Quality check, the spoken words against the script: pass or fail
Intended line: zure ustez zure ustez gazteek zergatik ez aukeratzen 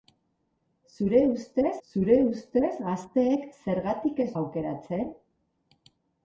pass